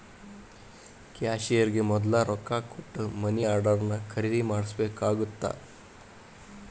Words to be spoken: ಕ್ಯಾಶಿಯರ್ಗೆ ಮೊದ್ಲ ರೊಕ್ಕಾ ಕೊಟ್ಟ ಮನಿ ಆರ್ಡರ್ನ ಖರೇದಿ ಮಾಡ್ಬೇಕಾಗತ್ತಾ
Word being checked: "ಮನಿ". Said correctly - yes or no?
yes